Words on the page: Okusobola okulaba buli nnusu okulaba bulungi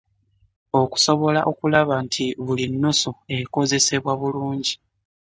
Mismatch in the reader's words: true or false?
true